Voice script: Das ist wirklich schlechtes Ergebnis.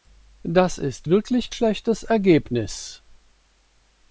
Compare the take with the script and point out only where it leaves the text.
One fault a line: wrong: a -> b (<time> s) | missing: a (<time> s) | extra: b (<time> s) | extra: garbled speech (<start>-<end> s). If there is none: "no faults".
no faults